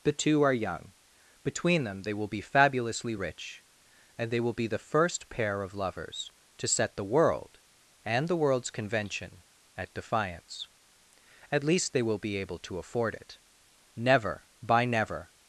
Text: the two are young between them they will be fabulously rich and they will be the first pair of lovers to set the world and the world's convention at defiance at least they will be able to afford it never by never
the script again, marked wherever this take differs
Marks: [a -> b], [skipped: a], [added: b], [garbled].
the two are young between them they will be fabulously rich and they will be the first pair of lovers to set the world and the world's convention at defiance at least they will be able to afford it never by never